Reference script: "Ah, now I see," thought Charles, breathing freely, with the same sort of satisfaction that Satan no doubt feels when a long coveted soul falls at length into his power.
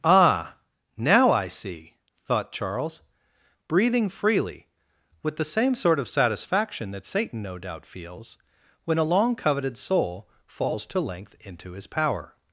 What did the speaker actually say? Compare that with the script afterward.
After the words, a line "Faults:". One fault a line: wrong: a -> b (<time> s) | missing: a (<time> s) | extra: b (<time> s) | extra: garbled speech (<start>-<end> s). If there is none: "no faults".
"Ah, now I see," thought Charles, breathing freely, with the same sort of satisfaction that Satan no doubt feels when a long coveted soul falls to length into his power.
Faults:
wrong: at -> to (10.9 s)